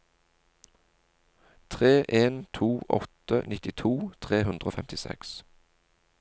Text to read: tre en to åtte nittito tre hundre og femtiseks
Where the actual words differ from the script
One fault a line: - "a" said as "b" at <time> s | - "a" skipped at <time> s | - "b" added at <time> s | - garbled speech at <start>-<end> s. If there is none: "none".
none